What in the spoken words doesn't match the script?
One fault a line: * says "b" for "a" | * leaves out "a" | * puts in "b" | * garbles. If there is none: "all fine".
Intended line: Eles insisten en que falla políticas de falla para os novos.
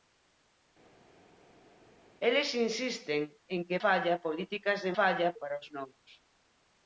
all fine